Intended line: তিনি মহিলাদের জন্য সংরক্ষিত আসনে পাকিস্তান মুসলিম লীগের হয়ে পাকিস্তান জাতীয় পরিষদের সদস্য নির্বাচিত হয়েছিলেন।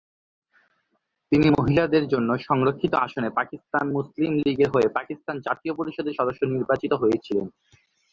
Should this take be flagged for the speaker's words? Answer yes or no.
no